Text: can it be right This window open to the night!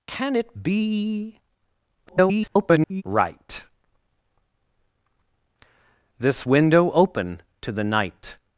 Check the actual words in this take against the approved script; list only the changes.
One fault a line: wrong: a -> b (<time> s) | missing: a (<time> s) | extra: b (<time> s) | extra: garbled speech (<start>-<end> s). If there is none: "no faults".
extra: garbled speech (2.1-3.0 s)